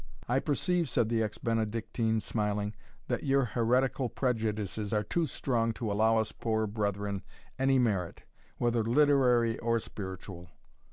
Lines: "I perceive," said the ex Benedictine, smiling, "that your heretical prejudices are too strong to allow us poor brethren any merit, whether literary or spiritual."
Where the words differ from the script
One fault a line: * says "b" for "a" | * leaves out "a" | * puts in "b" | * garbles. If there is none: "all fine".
all fine